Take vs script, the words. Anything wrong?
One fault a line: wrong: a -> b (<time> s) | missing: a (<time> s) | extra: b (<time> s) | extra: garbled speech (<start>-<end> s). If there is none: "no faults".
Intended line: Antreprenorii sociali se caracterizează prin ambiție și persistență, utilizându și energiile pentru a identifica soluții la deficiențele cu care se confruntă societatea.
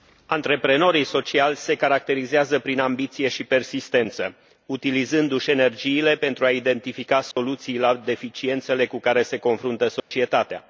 no faults